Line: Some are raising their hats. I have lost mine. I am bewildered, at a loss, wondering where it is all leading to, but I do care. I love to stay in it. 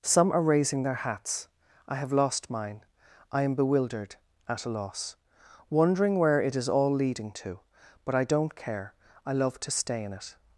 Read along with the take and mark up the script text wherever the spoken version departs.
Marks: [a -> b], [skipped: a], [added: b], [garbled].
Some are raising their hats. I have lost mine. I am bewildered, at a loss, wondering where it is all leading to, but I [do -> don't] care. I love to stay in it.